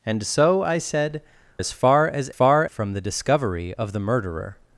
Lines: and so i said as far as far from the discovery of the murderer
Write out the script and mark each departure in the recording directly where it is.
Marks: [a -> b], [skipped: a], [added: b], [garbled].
and so i said as far as far from the discovery of the murderer